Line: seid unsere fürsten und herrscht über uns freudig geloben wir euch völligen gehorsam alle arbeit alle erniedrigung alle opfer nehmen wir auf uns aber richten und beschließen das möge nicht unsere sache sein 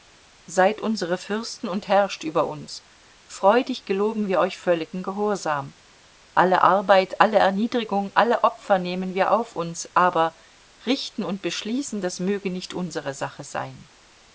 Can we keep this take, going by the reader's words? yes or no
yes